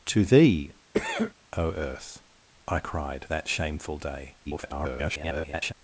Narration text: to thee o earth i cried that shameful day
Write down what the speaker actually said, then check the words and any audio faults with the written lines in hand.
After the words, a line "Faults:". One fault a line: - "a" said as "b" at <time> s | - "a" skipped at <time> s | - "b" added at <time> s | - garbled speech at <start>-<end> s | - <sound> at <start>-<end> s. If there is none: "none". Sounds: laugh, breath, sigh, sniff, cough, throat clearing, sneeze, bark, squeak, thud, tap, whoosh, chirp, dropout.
to thee o earth i cried that shameful day [garbled]
Faults:
- cough at 0.9-1.3 s
- garbled speech at 4.5-5.7 s